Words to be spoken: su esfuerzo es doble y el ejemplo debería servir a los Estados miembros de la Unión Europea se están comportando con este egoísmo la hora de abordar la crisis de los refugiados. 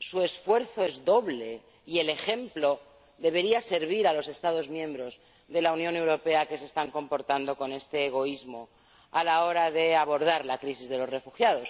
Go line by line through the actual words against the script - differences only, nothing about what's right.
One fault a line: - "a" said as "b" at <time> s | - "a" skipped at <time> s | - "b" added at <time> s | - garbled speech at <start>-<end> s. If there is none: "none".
- "que" added at 6.5 s
- "a" added at 9.1 s